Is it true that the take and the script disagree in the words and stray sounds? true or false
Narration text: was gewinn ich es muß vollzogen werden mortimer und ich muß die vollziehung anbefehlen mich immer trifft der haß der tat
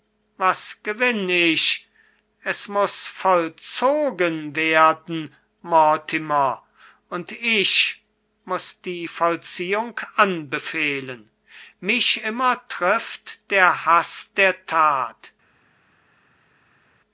false